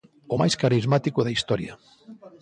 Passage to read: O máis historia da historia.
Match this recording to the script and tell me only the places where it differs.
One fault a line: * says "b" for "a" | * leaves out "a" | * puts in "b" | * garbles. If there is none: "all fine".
* says "carismático" for "historia"